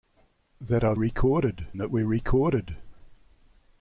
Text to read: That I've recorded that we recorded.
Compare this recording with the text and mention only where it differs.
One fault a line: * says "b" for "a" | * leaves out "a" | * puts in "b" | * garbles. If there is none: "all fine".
all fine